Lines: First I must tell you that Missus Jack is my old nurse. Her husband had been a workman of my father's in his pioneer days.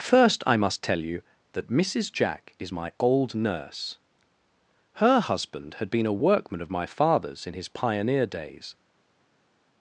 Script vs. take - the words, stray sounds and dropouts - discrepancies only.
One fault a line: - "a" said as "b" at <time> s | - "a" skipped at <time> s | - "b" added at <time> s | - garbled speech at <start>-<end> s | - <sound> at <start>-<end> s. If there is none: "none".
none